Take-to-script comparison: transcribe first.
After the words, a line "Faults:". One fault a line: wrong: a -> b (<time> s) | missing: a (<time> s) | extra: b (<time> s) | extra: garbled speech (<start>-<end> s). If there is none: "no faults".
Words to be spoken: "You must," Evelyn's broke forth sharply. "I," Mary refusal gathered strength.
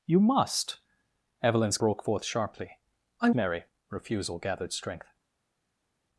"You must," Evelyn's broke forth sharply. "I," Mary refusal gathered strength.
Faults:
no faults